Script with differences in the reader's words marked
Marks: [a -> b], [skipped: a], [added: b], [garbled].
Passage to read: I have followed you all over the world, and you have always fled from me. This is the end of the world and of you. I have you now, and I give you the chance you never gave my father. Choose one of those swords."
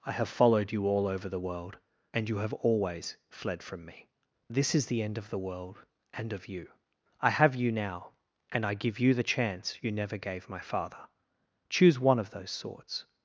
I have followed you all over the world, and you have always fled from me. This is the end of the world and of you. I have you now, and I give you the chance you never gave my father. Choose one of those swords."